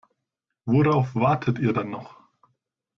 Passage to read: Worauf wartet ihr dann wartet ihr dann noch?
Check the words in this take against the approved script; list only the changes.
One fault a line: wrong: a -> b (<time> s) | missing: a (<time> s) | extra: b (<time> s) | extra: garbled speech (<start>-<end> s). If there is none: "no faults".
missing: wartet ihr dann (1.9 s)